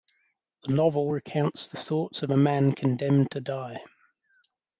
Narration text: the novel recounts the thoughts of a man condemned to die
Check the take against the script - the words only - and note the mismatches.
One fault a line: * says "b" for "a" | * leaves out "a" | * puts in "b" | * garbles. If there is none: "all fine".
all fine